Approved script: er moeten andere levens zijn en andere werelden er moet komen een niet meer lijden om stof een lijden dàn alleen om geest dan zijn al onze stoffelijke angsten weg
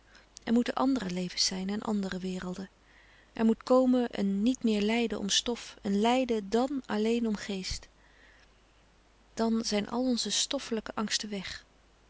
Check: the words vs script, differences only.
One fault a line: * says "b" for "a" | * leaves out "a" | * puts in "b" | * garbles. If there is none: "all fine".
all fine